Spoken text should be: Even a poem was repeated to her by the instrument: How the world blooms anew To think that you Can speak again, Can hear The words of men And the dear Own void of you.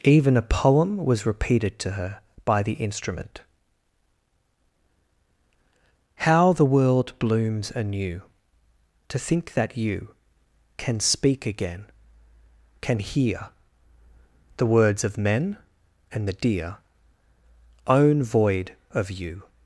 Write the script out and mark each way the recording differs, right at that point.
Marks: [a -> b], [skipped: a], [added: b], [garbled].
Even a poem was repeated to her by the instrument: How the world blooms anew To think that you Can speak again, Can hear The words of men And the dear Own void of you.